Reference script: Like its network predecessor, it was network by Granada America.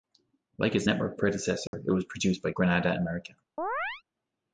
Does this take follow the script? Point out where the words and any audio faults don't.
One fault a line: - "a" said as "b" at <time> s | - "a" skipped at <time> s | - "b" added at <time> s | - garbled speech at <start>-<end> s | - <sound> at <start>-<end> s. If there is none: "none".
- dropout at 1.7-1.7 s
- "network" said as "produced" at 2.0 s
- chirp at 3.6-4.0 s